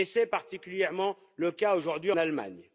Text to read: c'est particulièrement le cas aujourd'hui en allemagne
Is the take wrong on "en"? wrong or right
wrong